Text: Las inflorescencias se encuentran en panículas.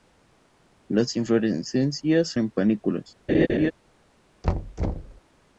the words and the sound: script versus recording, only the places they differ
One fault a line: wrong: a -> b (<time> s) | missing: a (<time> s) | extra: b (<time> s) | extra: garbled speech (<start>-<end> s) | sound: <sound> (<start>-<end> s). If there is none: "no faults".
missing: se encuentran (2.3 s)
sound: laugh (3.3-3.7 s)
sound: thud (4.4-5.2 s)